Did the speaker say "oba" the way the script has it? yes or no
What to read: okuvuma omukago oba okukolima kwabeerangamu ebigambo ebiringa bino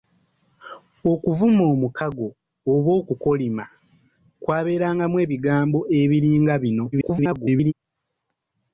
yes